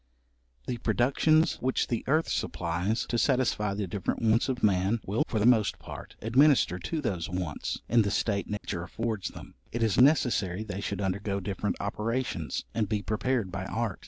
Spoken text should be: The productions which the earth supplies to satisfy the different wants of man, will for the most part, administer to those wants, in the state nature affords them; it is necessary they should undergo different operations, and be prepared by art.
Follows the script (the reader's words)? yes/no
yes